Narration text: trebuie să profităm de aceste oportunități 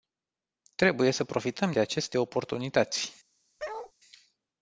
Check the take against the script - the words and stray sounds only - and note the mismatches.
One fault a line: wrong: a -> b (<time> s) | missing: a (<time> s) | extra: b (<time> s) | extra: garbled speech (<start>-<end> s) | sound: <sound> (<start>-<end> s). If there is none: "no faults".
sound: bark (3.6-3.9 s)